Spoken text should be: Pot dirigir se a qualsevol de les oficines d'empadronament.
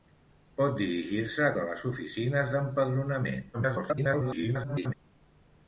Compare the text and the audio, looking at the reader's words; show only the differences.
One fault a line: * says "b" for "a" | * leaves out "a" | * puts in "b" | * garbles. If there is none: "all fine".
* leaves out "qualsevol"
* garbles